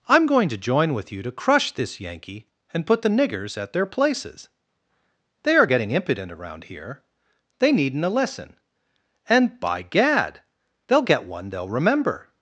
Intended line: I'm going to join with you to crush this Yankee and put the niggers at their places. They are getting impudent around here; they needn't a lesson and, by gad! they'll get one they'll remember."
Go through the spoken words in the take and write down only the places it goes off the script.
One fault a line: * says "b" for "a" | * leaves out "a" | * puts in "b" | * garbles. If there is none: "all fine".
all fine